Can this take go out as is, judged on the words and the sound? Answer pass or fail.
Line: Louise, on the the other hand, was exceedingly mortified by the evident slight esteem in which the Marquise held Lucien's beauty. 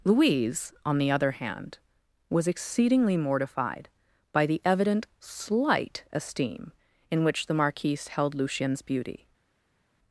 fail